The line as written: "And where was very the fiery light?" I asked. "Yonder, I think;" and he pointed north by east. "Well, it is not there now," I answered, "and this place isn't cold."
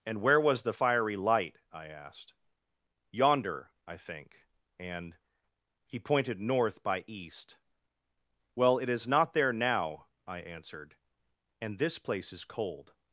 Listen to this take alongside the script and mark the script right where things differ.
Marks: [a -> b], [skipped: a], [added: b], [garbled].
"And where was [skipped: very] the fiery light?" I asked. "Yonder, I think;" and he pointed north by east. "Well, it is not there now," I answered, "and this place [isn't -> is] cold."